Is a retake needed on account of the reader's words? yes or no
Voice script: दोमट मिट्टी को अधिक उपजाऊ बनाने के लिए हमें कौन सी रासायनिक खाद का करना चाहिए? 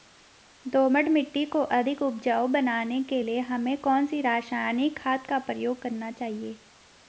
yes